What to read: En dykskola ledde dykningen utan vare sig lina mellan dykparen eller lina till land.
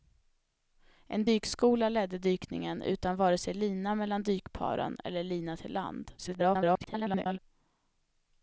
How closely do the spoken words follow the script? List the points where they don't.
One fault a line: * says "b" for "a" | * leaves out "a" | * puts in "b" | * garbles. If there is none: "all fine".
* garbles